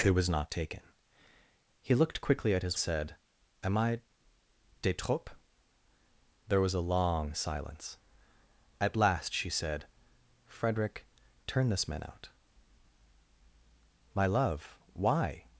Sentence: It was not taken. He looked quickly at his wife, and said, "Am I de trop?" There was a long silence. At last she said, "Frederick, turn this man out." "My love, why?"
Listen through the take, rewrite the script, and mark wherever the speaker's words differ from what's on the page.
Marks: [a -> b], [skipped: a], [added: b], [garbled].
It was not taken. He looked quickly at his [skipped: wife, and] said, "Am I de trop?" There was a long silence. At last she said, "Frederick, turn this man out." "My love, why?"